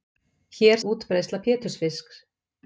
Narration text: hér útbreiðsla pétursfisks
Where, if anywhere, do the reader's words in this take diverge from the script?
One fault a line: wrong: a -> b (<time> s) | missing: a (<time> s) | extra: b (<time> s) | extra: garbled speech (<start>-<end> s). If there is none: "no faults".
no faults